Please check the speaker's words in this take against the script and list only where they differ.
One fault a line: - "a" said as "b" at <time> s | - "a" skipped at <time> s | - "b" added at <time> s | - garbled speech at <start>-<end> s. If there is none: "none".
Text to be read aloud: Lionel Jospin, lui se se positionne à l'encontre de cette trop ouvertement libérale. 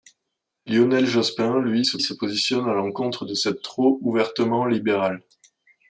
none